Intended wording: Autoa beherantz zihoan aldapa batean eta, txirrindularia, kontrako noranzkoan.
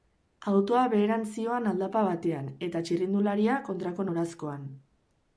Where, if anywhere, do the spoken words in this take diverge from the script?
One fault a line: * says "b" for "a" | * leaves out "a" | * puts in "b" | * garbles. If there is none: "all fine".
all fine